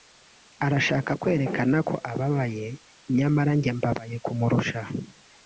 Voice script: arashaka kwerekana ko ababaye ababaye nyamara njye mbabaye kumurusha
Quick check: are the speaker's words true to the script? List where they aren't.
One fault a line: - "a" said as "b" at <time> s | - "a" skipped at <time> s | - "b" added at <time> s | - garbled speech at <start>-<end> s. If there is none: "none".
- "ababaye" skipped at 2.7 s